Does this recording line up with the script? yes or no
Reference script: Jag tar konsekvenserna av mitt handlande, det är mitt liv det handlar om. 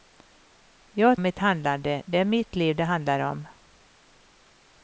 no